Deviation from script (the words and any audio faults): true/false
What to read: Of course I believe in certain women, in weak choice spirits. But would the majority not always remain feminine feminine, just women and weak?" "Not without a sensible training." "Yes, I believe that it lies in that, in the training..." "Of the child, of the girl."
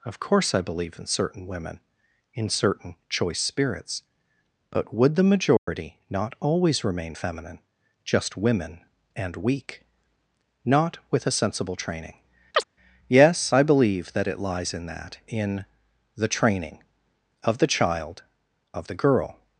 true